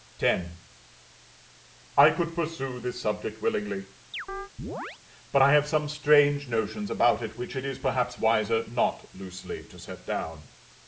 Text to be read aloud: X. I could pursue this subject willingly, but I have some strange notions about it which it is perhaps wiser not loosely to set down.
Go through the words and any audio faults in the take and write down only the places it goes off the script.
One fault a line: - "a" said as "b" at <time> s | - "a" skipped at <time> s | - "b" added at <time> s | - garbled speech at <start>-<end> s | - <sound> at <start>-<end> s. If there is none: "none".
- chirp at 4.1-5.0 s